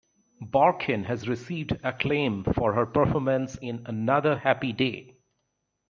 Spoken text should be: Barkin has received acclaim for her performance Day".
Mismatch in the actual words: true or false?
true